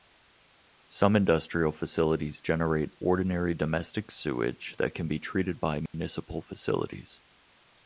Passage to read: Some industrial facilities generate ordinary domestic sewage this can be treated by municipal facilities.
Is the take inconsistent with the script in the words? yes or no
yes